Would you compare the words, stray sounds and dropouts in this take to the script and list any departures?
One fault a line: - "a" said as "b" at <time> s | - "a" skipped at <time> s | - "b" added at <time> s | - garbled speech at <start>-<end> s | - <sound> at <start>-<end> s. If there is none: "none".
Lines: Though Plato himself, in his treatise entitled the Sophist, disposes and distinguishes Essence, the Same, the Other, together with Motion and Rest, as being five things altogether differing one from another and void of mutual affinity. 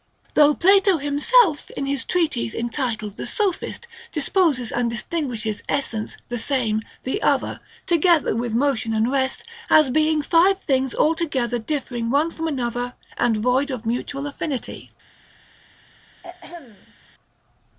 - throat clearing at 16.2-17.0 s